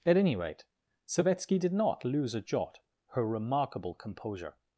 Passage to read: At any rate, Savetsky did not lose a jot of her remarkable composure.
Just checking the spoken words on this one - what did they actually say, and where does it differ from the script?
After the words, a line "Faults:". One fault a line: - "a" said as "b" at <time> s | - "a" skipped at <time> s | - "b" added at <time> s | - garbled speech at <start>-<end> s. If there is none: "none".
At any rate, Savetsky did not lose a jot her remarkable composure.
Faults:
- "of" skipped at 2.8 s